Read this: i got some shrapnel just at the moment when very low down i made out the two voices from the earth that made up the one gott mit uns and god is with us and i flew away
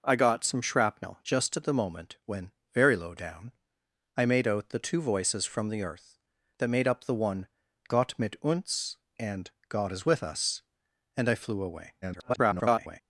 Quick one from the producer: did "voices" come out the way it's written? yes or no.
yes